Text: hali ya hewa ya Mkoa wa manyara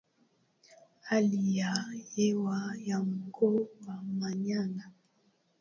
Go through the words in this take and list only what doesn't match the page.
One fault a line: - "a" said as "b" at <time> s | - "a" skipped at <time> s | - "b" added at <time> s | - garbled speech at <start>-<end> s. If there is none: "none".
none